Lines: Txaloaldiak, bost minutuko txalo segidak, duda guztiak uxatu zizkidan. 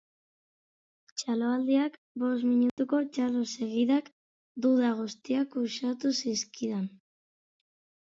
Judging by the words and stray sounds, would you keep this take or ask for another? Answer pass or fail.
fail